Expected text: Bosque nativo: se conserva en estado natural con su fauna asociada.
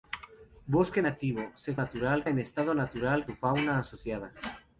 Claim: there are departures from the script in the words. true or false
true